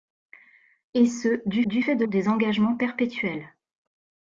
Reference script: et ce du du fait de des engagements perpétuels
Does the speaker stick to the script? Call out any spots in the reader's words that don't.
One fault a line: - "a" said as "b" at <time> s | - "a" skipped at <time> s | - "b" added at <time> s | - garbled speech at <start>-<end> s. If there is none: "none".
none